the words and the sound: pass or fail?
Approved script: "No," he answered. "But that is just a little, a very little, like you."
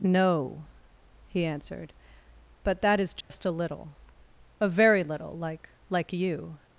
fail